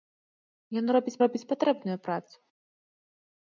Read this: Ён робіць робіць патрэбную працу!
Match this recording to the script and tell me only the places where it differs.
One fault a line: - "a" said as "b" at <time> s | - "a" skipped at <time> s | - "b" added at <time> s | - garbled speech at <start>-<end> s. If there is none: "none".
none